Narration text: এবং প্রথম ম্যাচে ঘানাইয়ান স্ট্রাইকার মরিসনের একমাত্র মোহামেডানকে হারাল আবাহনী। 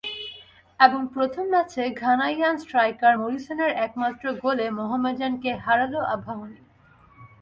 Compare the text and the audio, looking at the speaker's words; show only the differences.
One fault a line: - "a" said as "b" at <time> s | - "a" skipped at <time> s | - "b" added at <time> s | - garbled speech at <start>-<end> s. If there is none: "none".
- "গোলে" added at 4.4 s